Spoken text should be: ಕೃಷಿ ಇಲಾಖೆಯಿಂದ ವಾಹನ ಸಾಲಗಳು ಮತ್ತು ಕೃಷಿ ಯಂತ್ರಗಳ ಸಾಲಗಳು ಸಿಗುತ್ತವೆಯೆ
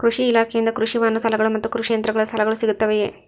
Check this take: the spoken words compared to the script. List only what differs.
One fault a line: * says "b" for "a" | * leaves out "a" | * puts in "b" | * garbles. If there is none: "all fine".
* puts in "ಕೃಷಿ"